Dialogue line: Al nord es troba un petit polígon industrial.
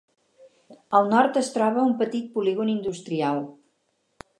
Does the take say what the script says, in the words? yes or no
yes